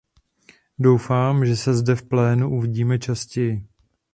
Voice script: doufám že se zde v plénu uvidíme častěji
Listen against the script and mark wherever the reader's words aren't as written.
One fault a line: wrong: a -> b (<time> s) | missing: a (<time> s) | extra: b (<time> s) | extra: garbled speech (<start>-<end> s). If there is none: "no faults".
no faults